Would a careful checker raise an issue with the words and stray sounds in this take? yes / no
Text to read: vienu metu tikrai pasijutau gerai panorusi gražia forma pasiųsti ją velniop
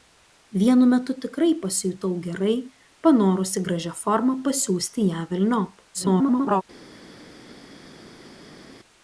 yes